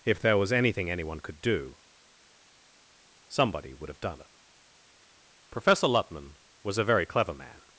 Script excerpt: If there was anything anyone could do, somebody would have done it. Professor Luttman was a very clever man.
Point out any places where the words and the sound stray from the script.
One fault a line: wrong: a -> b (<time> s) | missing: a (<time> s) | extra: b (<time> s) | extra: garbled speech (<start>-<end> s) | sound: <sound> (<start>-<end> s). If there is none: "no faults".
no faults